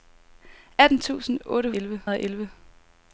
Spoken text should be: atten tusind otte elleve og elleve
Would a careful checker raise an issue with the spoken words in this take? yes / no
no